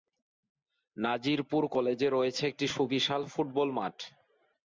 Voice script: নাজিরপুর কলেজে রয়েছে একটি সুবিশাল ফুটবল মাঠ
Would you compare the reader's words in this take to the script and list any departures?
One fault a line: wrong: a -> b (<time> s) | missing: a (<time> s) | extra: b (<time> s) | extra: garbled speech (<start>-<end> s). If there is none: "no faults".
no faults